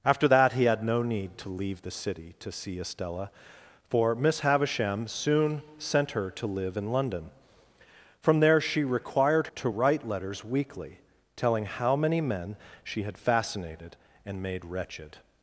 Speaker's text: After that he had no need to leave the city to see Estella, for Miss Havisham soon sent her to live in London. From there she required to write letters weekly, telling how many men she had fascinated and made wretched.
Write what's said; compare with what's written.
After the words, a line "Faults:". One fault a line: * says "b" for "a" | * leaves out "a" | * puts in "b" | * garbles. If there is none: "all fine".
After that he had no need to leave the city to see Estella, for Miss Havisham soon sent her to live in London. From there she required to write letters weekly, telling how many men she had fascinated and made wretched.
Faults:
all fine